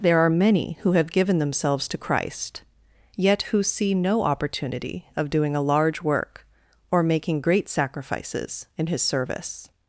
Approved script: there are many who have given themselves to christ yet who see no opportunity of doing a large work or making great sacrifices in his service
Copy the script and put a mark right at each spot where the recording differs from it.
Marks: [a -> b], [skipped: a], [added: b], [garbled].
there are many who have given themselves to christ yet who see no opportunity of doing a large work or making great sacrifices in his service